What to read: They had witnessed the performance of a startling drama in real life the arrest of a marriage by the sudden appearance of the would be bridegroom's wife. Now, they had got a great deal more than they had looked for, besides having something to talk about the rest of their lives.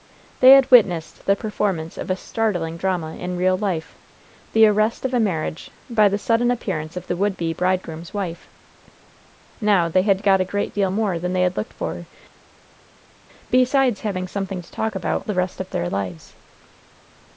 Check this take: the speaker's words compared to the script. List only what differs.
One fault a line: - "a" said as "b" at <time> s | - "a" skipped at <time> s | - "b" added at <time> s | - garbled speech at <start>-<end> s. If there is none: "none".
none